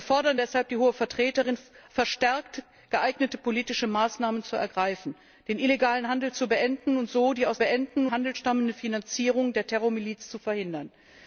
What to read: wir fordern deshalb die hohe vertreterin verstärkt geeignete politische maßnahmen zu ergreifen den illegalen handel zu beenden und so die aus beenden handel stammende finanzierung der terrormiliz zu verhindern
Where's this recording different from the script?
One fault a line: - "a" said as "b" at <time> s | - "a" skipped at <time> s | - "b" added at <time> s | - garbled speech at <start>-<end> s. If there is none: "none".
none